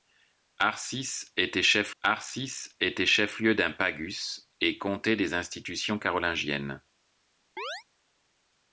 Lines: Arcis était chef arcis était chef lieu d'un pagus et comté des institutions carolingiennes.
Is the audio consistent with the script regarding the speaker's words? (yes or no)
yes